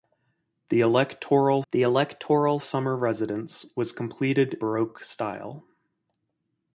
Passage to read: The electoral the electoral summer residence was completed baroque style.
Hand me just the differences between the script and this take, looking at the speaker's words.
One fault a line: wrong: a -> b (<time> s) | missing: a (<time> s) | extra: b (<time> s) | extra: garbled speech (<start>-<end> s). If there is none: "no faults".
no faults